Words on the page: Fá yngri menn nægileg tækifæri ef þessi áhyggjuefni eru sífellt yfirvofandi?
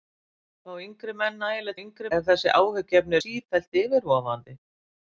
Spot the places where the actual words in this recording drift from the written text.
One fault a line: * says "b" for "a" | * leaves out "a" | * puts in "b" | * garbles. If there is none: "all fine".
* says "yngri" for "tækifæri"
* leaves out "eru"